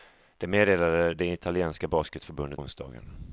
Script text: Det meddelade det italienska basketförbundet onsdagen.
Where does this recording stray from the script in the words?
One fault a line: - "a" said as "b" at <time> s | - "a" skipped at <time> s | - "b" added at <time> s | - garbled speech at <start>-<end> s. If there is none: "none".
none